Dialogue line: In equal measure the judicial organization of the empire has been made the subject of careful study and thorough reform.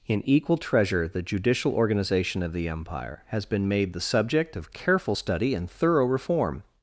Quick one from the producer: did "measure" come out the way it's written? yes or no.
no